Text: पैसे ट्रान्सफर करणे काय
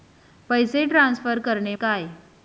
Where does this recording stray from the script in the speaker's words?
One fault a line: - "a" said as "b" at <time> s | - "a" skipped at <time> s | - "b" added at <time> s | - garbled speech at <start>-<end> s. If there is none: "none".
none